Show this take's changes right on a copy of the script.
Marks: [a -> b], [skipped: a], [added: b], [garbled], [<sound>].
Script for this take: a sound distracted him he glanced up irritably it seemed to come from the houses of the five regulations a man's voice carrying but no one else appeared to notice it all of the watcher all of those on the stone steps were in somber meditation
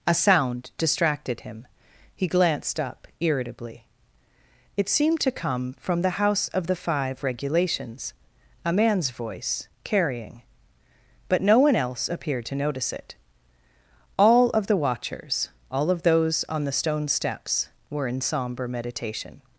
a sound distracted him he glanced up irritably it seemed to come from the [houses -> house] of the five regulations a man's voice carrying but no one else appeared to notice it all of the [watcher -> watchers] all of those on the stone steps were in somber meditation